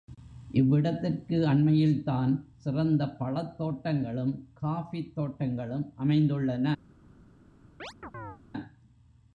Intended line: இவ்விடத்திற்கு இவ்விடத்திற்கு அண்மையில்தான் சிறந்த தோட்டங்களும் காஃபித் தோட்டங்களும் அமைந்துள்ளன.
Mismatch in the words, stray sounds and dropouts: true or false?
true